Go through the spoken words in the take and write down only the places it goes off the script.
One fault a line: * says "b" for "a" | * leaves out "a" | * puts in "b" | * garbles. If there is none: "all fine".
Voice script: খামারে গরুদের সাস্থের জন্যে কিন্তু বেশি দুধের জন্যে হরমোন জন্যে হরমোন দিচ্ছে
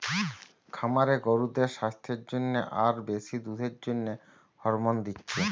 * says "আর" for "কিন্তু"
* leaves out "জন্যে হরমোন"